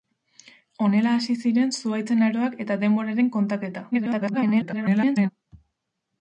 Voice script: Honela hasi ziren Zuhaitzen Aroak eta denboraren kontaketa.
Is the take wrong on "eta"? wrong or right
right